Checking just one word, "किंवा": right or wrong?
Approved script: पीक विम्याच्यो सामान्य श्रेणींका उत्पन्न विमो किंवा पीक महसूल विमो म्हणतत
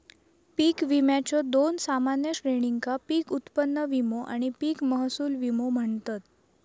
wrong